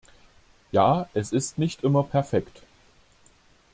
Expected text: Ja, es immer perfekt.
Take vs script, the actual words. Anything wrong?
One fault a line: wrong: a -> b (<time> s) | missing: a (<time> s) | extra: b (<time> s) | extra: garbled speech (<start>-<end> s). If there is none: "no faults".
extra: ist nicht (1.3 s)